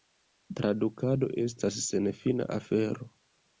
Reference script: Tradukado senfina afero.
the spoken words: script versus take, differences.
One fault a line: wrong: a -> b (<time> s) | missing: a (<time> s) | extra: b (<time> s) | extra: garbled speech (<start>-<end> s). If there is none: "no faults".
extra: estas (1.4 s)